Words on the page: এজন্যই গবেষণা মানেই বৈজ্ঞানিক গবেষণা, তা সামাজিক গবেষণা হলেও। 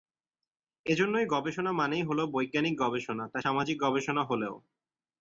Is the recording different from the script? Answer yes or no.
yes